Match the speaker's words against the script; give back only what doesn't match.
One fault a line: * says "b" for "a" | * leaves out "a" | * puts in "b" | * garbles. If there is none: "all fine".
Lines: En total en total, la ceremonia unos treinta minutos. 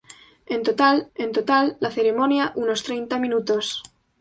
all fine